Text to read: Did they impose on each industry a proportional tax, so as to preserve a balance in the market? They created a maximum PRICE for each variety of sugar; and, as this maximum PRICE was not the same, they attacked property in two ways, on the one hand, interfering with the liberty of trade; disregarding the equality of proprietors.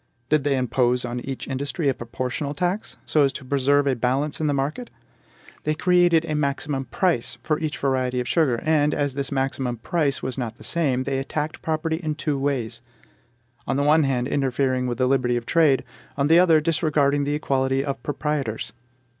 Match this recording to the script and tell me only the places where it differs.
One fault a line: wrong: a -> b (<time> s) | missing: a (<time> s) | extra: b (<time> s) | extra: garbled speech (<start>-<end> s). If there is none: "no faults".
extra: on the other (16.2 s)